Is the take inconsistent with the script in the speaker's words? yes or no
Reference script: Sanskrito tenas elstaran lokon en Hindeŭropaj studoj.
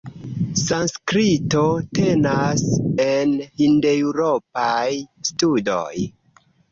yes